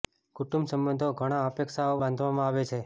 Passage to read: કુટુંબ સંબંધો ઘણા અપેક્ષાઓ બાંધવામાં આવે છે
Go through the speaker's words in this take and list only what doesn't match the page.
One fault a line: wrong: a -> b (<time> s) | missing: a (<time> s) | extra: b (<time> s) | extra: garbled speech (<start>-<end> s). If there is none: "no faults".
no faults